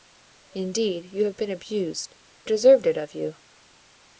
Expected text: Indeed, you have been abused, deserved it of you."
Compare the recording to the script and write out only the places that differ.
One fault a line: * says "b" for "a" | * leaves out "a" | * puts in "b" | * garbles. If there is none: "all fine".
all fine